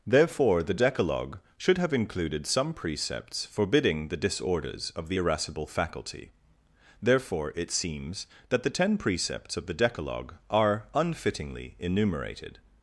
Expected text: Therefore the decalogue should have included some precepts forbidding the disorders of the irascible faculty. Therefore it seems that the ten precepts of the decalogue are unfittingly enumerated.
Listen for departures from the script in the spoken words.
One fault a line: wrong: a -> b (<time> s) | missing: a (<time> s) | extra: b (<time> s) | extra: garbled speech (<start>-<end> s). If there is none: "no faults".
no faults